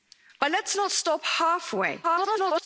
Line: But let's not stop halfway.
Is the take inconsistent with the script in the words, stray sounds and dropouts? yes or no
yes